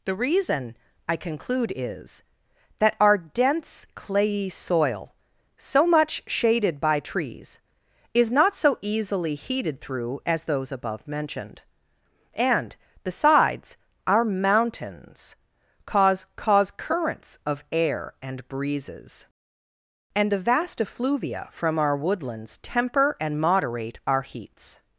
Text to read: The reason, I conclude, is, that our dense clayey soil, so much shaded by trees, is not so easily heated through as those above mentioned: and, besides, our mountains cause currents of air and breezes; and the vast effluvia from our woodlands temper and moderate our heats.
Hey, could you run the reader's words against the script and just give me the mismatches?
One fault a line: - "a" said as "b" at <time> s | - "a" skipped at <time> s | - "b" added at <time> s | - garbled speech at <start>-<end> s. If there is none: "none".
- "cause" added at 16.4 s